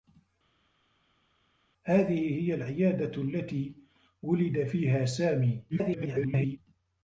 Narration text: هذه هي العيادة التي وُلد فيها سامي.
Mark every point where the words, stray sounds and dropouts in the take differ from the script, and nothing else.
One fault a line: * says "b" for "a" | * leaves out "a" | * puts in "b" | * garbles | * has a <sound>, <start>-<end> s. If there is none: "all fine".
* garbles